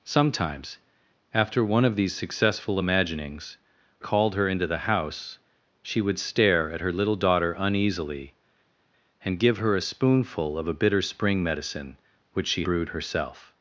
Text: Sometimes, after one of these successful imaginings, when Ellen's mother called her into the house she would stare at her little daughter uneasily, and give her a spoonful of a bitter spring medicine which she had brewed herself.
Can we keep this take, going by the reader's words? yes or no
no